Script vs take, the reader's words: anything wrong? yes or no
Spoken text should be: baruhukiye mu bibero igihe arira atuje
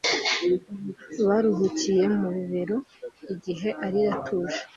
no